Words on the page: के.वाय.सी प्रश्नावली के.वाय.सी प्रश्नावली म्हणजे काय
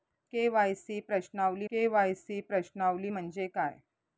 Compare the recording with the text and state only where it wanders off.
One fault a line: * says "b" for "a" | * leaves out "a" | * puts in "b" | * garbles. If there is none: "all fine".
all fine